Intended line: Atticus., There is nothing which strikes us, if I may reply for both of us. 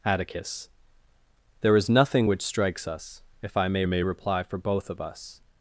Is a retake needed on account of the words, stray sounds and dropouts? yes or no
yes